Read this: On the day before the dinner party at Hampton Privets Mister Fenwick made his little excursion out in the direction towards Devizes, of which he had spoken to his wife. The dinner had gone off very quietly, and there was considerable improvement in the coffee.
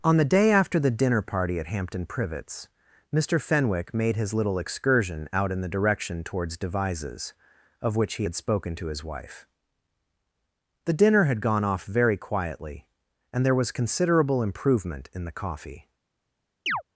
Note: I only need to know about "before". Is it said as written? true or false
false